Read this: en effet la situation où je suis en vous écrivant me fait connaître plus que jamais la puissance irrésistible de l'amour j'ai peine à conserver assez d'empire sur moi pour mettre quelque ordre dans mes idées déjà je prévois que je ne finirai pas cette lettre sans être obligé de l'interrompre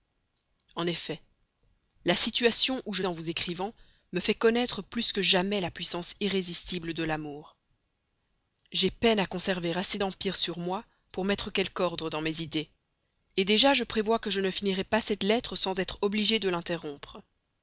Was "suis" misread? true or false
true